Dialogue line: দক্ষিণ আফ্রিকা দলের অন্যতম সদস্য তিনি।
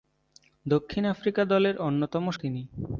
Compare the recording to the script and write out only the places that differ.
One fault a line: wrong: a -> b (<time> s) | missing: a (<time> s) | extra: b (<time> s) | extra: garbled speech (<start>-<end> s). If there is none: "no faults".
missing: সদস্য (2.2 s)